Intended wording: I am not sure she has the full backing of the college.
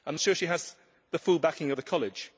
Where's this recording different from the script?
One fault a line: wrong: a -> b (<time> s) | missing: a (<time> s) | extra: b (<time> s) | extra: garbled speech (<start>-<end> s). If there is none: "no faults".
missing: not (0.1 s)